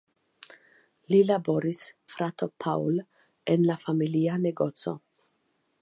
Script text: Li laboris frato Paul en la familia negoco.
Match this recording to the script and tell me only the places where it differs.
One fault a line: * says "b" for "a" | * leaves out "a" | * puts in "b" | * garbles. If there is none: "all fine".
all fine